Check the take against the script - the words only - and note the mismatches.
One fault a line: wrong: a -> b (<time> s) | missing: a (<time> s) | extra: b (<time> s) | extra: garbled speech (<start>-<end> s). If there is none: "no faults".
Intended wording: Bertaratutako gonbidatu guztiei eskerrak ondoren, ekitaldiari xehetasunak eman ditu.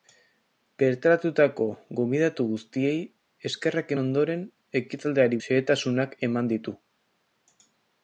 no faults